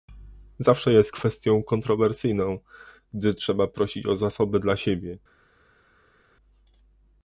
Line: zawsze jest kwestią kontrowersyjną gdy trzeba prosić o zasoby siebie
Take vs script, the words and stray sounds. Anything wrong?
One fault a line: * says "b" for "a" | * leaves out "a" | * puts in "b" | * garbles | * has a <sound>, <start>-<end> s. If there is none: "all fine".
* puts in "dla"